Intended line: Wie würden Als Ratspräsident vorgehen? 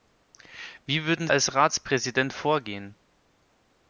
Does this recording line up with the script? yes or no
yes